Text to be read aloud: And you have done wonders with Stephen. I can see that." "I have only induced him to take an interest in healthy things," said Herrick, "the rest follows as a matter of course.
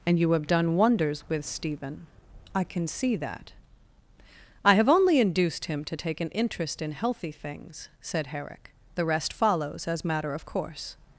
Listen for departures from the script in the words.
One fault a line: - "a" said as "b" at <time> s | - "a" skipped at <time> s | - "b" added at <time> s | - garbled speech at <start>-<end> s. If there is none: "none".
- "a" skipped at 10.0 s